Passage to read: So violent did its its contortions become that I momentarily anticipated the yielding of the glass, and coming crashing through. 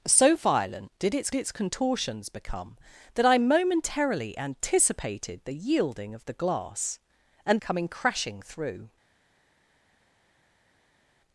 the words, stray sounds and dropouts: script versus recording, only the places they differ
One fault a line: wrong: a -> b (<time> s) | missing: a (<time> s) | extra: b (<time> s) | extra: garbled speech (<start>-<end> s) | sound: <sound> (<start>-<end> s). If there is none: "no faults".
no faults